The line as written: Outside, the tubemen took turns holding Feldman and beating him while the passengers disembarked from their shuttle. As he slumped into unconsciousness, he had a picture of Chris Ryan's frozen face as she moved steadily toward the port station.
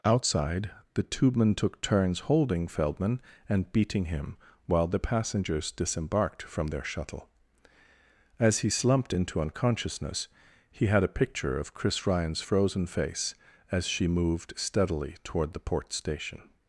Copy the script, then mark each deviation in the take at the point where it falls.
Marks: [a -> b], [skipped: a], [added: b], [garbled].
Outside, the tubemen took turns holding Feldman and beating him while the passengers disembarked from their shuttle. As he slumped into unconsciousness, he had a picture of Chris Ryan's frozen face as she moved steadily toward the port station.